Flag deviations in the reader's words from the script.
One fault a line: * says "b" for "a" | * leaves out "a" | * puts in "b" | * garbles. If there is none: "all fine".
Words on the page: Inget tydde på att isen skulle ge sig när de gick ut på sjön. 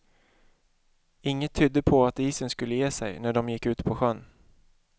all fine